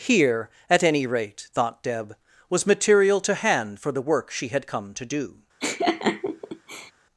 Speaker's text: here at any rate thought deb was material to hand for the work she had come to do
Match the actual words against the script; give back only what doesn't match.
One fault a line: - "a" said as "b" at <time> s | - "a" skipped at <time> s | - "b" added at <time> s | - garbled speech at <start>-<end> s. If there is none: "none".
none